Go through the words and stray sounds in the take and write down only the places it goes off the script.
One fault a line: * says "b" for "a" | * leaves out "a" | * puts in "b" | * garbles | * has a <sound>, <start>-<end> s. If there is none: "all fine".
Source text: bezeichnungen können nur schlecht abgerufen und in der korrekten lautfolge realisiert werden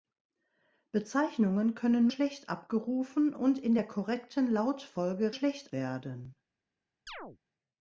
* leaves out "nur"
* says "schlecht" for "realisiert"
* has a chirp, 7.1-7.4 s